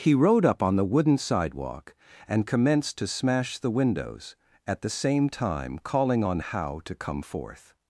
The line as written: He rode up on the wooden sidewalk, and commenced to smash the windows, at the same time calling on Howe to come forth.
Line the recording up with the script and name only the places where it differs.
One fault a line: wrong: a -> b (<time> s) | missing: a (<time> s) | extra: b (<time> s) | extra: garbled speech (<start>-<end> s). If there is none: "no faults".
no faults